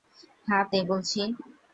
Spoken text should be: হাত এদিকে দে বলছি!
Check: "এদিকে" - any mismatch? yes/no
yes